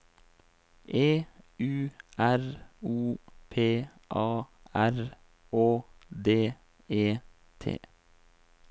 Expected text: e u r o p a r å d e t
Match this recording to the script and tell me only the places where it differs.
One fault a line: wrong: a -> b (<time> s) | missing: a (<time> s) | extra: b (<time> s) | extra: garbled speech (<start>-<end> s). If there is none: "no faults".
no faults